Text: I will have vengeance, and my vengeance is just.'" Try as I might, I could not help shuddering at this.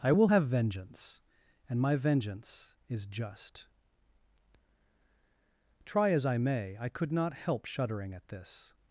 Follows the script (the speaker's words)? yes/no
no